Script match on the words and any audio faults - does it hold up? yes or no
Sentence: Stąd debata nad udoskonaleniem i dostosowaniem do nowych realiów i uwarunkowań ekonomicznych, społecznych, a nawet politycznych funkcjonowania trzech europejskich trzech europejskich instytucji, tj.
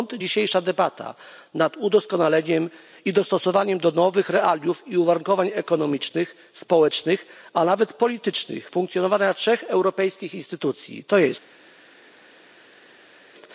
no